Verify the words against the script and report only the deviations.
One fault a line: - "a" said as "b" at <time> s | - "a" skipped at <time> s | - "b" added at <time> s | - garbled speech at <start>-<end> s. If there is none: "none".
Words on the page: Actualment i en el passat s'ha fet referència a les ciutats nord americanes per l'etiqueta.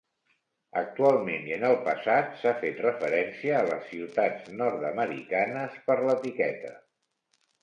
none